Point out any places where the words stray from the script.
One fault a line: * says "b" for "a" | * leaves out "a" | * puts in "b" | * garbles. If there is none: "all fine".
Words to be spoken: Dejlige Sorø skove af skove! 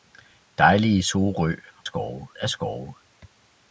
all fine